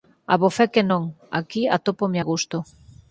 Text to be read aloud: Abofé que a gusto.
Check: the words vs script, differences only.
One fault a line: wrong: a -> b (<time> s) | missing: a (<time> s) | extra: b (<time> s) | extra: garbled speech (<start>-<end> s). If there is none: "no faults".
extra: non Aquí atópome (0.9 s)